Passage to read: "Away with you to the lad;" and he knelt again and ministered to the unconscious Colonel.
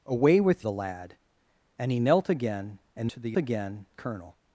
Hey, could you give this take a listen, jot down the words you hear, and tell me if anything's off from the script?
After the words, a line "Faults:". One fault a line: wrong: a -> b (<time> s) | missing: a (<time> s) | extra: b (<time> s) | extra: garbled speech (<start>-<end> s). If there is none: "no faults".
"Away with the lad;" and he knelt again and to the again Colonel.
Faults:
missing: you to (0.7 s)
missing: ministered (3.1 s)
wrong: unconscious -> again (3.3 s)